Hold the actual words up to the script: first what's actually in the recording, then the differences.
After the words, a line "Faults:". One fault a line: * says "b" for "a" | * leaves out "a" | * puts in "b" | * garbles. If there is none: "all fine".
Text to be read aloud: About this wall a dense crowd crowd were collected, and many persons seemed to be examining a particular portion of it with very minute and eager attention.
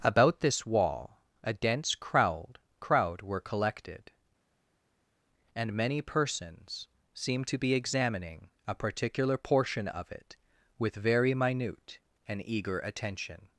About this wall a dense crowd crowd were collected, and many persons seemed to be examining a particular portion of it with very minute and eager attention.
Faults:
all fine